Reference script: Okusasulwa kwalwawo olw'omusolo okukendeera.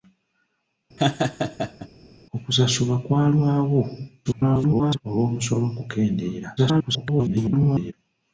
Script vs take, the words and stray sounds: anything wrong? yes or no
yes